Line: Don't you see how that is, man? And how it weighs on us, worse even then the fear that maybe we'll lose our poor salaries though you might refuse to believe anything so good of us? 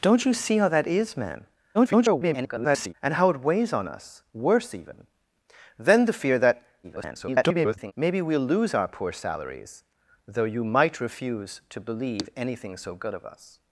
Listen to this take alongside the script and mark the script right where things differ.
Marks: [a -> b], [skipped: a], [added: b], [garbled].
Don't you see how that is, man? [garbled] And how it weighs on us, worse even then the fear that [garbled] maybe we'll lose our poor salaries though you might refuse to believe anything so good of us?